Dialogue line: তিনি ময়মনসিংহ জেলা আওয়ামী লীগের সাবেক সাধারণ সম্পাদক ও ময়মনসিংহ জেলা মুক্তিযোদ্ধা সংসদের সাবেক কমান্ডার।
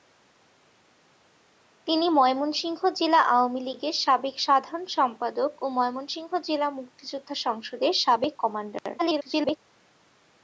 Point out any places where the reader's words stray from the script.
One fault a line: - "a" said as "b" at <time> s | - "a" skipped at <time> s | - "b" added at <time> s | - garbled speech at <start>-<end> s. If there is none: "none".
- garbled speech at 9.0-9.6 s